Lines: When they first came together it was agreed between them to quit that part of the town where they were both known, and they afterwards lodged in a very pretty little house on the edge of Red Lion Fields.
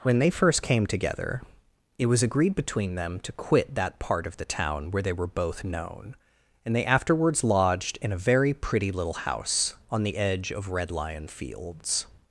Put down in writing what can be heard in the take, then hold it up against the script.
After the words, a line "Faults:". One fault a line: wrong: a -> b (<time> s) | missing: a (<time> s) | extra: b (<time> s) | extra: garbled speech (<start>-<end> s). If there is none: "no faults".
When they first came together it was agreed between them to quit that part of the town where they were both known, and they afterwards lodged in a very pretty little house on the edge of Red Lion Fields.
Faults:
no faults